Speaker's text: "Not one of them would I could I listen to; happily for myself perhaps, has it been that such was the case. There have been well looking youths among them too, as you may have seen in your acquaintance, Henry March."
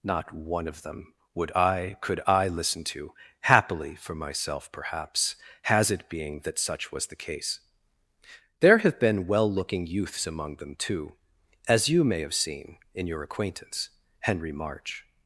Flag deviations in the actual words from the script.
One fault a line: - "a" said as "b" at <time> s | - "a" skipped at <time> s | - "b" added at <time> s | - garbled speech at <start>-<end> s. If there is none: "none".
- "been" said as "being" at 6.1 s